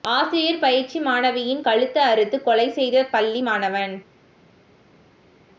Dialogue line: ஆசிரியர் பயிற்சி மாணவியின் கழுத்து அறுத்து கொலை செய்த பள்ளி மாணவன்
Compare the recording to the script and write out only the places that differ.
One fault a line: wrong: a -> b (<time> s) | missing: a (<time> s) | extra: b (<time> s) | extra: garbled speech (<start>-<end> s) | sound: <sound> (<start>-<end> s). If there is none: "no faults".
no faults